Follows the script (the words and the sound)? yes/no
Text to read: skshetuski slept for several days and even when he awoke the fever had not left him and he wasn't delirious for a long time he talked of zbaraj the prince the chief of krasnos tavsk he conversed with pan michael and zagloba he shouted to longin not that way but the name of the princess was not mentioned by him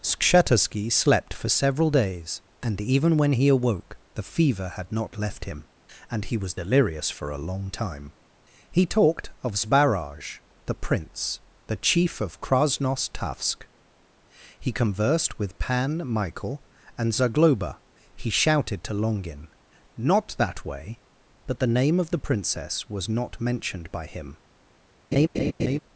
no